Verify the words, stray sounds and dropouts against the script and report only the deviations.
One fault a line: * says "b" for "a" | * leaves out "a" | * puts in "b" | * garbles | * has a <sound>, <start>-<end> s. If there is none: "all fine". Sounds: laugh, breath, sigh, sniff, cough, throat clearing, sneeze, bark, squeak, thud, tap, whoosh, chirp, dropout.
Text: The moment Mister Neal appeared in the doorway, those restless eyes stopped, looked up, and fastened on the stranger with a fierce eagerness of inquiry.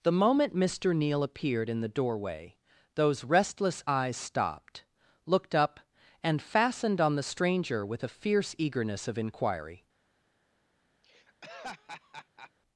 * has a laugh, 11.0-12.5 s